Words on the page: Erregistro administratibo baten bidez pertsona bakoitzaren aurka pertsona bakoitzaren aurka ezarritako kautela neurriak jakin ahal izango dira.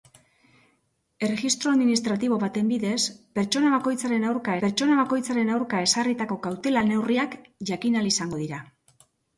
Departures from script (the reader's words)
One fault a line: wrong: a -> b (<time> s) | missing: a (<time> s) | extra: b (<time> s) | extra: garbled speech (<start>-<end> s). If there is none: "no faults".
no faults